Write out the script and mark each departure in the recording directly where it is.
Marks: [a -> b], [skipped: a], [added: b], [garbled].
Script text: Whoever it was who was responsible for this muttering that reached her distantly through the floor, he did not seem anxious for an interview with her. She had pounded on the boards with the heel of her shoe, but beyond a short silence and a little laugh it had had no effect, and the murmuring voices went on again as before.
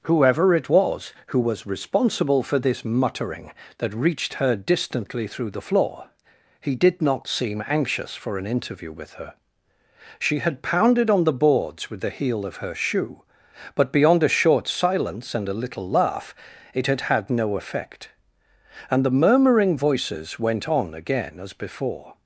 Whoever it was who was responsible for this muttering that reached her distantly through the floor, he did not seem anxious for an interview with her. She had pounded on the boards with the heel of her shoe, but beyond a short silence and a little laugh it had had no effect, and the murmuring voices went on again as before.